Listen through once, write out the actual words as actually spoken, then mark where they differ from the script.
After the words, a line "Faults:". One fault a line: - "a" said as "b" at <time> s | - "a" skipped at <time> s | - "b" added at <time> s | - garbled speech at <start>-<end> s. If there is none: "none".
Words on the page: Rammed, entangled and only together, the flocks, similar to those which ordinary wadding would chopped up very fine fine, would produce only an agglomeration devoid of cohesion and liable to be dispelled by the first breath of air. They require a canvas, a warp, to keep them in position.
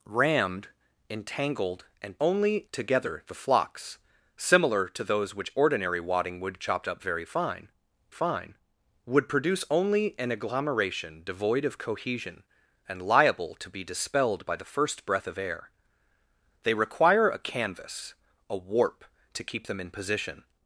Rammed, entangled and only together, the flocks, similar to those which ordinary wadding would chopped up very fine fine, would produce only an agglomeration devoid of cohesion and liable to be dispelled by the first breath of air. They require a canvas, a warp, to keep them in position.
Faults:
none